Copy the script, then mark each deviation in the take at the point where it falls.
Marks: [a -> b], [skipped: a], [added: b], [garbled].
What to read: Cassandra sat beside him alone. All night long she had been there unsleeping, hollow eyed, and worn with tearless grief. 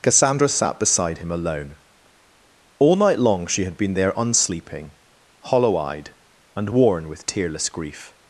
Cassandra sat beside him alone. All night long she had been there unsleeping, hollow eyed, and worn with tearless grief.